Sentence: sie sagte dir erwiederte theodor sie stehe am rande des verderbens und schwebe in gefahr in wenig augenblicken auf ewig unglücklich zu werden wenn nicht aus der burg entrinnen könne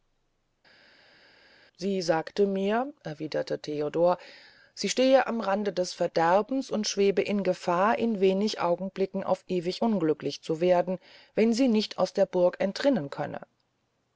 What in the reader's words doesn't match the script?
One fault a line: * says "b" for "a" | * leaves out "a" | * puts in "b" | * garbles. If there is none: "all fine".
* says "mir" for "dir"
* puts in "sie"